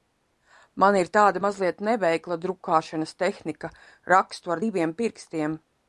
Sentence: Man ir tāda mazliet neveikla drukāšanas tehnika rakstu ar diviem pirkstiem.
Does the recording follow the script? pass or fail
pass